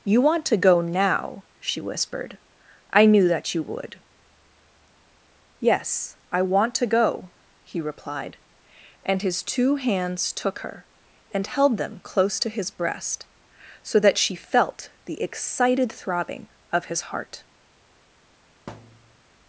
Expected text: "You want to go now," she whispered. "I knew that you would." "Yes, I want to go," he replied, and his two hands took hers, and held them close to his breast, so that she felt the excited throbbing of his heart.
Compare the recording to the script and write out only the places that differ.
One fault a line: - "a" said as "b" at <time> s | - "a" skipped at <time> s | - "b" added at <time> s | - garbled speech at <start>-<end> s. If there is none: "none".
- "hers" said as "her" at 10.6 s